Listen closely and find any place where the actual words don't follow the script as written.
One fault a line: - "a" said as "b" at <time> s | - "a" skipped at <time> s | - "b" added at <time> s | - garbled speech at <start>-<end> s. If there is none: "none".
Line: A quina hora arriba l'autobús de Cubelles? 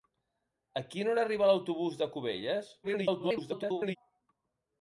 - garbled speech at 2.8-4.0 s